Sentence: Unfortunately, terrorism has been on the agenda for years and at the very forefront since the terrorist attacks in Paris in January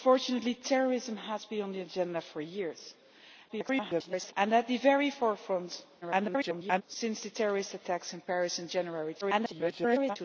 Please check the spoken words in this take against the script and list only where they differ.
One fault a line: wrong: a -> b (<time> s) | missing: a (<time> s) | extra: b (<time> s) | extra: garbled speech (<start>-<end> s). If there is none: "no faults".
extra: garbled speech (3.5-4.3 s)
extra: garbled speech (6.0-6.8 s)
extra: garbled speech (9.2-10.2 s)